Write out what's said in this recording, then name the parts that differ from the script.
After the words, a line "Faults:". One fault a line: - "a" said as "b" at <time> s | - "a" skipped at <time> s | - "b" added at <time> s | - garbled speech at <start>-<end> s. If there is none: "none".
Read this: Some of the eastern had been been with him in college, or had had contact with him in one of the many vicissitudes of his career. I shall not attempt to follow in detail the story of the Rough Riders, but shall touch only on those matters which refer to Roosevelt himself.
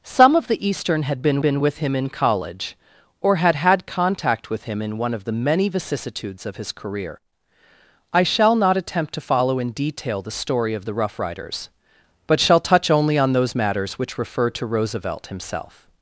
Some of the eastern had been been with him in college, or had had contact with him in one of the many vicissitudes of his career. I shall not attempt to follow in detail the story of the Rough Riders, but shall touch only on those matters which refer to Roosevelt himself.
Faults:
none